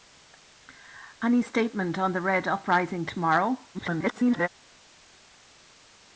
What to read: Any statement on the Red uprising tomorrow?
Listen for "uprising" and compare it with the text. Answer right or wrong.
right